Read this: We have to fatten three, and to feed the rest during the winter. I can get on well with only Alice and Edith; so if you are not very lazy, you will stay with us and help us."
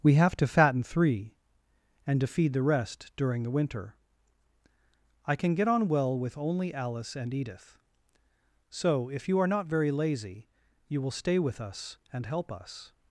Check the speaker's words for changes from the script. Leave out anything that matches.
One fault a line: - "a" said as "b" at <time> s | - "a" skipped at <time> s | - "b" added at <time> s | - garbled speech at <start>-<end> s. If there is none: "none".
none